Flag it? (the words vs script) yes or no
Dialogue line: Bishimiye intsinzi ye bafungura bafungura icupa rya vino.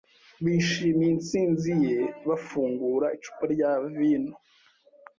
yes